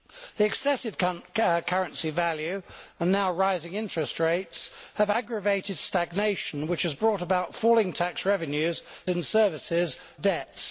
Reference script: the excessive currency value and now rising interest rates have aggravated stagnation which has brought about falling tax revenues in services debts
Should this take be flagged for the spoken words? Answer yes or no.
no